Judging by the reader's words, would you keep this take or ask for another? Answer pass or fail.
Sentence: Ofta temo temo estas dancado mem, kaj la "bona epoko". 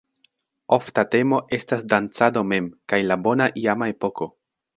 fail